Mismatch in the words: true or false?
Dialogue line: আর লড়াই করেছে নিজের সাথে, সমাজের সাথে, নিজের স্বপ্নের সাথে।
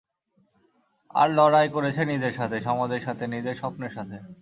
false